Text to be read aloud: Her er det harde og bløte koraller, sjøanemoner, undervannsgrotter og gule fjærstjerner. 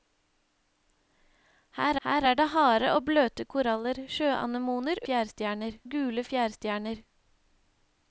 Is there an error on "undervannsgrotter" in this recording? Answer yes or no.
yes